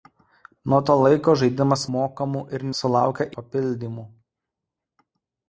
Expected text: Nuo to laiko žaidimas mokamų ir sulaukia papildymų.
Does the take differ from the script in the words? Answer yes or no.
no